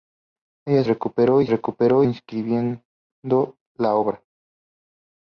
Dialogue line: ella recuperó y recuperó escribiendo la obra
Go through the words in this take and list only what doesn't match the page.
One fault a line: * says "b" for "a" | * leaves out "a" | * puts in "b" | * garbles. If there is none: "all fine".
all fine